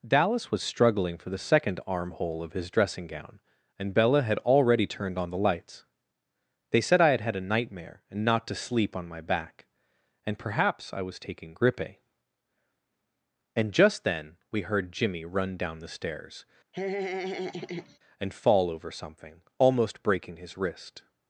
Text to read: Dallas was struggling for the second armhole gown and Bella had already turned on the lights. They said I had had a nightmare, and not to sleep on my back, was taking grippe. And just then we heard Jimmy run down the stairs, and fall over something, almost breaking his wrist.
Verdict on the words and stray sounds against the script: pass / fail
fail